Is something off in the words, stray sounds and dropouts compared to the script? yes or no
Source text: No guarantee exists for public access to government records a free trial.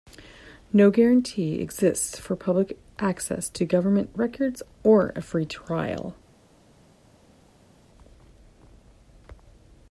yes